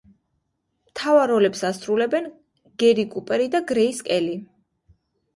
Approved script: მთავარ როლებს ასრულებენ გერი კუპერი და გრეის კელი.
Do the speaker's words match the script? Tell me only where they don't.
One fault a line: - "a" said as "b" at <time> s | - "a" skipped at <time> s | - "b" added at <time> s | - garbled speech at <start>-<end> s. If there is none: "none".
none